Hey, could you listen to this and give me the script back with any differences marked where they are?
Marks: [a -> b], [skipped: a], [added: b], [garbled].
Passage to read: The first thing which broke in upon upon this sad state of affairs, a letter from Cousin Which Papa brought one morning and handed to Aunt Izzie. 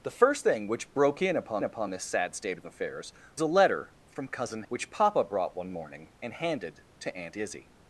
The first thing which broke in upon upon this sad state of affairs, a letter from Cousin Which Papa brought one morning and handed to Aunt Izzie.